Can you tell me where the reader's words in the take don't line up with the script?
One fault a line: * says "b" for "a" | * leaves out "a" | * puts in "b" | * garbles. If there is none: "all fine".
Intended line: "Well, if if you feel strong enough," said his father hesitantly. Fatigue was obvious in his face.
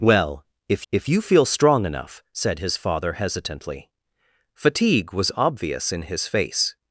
all fine